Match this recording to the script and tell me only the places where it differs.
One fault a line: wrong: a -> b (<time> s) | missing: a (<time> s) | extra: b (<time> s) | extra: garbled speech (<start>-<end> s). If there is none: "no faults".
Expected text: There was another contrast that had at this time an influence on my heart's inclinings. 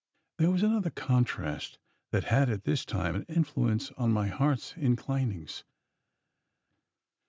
no faults